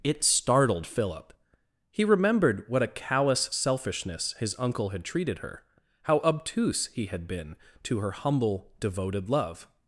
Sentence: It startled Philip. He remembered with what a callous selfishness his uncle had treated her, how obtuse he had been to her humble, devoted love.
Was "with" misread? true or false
true